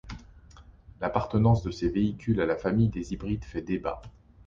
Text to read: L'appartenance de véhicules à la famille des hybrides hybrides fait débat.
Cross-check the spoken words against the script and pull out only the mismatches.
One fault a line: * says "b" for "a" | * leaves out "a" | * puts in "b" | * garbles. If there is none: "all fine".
* puts in "ces"
* leaves out "hybrides"